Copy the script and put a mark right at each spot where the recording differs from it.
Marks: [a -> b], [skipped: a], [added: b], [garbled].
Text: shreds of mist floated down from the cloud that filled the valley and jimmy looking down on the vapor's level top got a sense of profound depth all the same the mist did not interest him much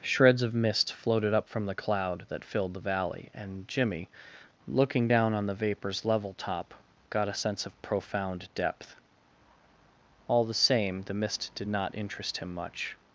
shreds of mist floated [down -> up] from the cloud that filled the valley and jimmy looking down on the vapor's level top got a sense of profound depth all the same the mist did not interest him much